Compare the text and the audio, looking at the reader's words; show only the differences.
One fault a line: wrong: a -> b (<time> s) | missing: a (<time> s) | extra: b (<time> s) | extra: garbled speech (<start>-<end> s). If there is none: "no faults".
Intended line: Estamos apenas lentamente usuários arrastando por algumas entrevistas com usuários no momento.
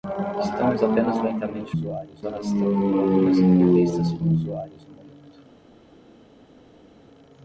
no faults